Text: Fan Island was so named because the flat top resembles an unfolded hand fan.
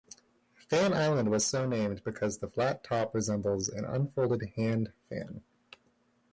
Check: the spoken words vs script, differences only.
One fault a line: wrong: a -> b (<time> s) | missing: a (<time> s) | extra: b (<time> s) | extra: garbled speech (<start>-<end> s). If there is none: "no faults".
no faults